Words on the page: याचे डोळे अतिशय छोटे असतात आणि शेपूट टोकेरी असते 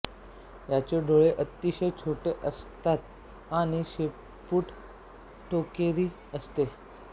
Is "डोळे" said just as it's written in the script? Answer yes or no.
yes